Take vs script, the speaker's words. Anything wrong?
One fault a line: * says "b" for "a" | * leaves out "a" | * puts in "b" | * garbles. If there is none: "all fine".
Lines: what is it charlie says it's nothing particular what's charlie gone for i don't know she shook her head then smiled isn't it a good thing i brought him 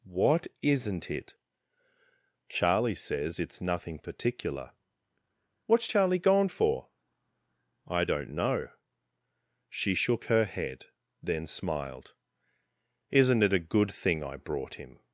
* says "isn't" for "is"